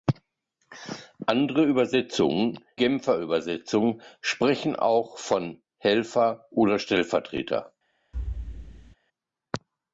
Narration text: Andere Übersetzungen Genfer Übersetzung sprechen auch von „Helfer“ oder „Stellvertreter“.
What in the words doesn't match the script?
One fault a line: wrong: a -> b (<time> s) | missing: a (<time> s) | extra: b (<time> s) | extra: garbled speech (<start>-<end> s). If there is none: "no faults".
no faults